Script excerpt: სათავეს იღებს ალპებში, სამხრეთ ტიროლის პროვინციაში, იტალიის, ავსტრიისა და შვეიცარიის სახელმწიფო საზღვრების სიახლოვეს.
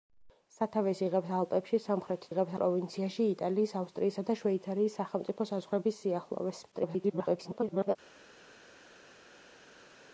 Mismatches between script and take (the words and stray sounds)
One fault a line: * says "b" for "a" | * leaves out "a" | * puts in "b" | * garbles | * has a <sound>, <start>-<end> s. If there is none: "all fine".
* says "იღებს" for "ტიროლის"
* garbles